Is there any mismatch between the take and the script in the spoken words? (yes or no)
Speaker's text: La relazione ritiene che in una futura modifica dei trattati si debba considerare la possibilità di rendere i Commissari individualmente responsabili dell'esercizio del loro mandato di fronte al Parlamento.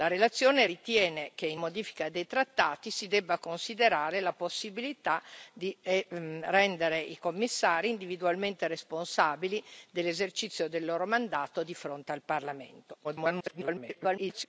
yes